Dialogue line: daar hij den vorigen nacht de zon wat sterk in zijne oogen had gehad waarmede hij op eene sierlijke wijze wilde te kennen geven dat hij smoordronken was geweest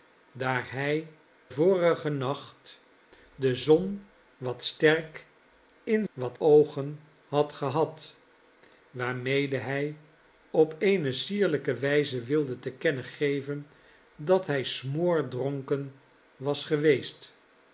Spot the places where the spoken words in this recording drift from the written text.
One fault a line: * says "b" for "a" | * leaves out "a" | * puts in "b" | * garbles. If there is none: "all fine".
* leaves out "den"
* says "wat" for "zijne"